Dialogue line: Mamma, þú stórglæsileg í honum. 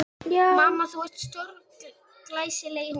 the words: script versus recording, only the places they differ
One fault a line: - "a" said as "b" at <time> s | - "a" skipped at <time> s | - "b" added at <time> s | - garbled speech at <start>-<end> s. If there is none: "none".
- "ert" added at 1.0 s